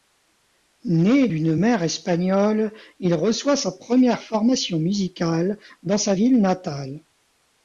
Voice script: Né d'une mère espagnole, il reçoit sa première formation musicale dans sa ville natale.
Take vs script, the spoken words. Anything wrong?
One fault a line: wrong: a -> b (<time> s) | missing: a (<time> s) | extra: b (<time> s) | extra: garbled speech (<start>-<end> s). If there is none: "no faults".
no faults